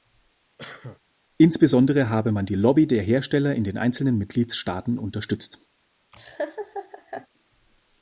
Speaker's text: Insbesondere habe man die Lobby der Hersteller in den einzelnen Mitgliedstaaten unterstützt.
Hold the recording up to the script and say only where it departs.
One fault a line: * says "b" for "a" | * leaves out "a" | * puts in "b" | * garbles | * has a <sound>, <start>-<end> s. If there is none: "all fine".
* has a cough, 0.6-1.0 s
* has a laugh, 6.1-7.3 s